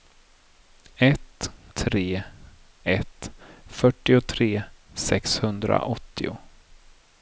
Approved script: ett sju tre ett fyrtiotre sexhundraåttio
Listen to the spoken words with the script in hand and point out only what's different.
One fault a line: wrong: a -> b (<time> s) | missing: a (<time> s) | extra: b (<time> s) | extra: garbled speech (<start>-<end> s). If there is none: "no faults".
missing: sju (1.5 s)